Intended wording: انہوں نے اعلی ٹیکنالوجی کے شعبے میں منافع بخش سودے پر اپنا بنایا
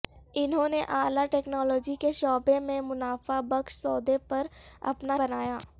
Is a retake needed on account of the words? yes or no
no